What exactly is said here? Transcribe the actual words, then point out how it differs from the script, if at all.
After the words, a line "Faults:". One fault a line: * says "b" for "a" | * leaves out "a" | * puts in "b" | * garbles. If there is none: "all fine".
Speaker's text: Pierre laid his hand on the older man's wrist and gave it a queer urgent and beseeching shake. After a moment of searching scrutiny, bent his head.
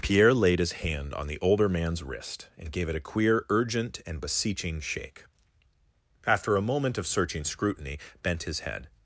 Pierre laid his hand on the older man's wrist and gave it a queer urgent and beseeching shake. After a moment of searching scrutiny, bent his head.
Faults:
all fine